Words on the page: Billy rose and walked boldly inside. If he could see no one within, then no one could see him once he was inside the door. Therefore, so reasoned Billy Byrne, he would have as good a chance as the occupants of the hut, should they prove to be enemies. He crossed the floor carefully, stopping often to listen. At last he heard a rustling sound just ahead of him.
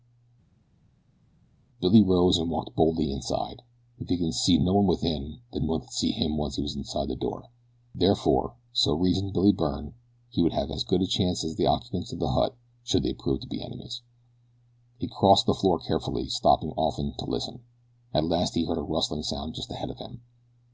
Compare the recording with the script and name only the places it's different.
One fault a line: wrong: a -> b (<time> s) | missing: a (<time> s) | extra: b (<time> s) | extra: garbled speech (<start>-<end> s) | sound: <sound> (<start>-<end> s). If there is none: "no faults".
missing: no (5.7 s)